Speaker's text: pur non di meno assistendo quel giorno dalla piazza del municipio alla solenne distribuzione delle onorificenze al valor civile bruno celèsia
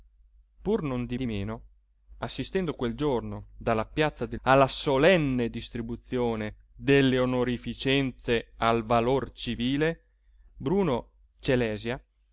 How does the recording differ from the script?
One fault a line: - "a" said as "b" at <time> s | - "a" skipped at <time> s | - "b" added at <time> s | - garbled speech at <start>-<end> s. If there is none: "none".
- "di" added at 1.1 s
- "municipio" skipped at 4.4 s